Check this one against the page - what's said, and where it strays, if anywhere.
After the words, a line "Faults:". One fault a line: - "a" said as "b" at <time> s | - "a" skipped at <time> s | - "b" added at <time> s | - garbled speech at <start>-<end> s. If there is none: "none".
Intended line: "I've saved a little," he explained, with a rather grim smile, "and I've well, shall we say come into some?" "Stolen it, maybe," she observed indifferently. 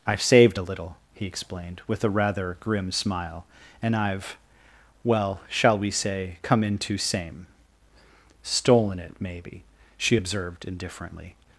"I've saved a little," he explained, with a rather grim smile, "and I've well, shall we say come into same?" "Stolen it, maybe," she observed indifferently.
Faults:
- "some" said as "same" at 7.0 s